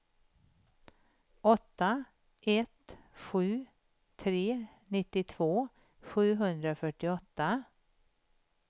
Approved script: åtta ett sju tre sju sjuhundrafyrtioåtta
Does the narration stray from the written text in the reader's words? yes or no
yes